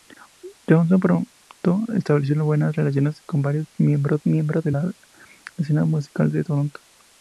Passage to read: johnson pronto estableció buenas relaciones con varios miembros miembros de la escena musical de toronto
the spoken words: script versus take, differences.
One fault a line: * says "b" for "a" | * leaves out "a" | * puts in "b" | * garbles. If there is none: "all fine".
all fine